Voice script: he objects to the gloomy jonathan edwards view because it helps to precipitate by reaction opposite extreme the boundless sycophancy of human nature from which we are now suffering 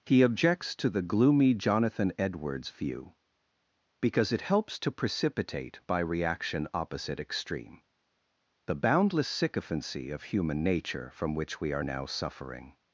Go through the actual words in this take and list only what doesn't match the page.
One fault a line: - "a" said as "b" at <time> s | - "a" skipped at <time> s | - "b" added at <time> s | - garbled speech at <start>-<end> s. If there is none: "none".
none